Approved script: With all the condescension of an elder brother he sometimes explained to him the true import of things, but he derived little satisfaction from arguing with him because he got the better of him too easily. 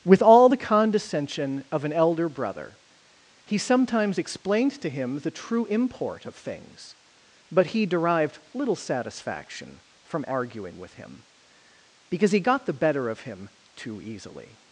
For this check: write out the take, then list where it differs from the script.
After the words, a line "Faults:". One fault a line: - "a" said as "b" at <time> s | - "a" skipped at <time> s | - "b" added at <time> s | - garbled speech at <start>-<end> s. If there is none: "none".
With all the condescension of an elder brother he sometimes explained to him the true import of things, but he derived little satisfaction from arguing with him because he got the better of him too easily.
Faults:
none